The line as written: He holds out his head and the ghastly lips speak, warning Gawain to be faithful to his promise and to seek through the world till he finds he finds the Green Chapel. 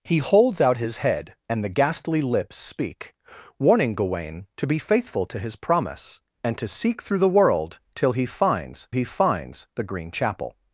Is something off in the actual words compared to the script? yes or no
no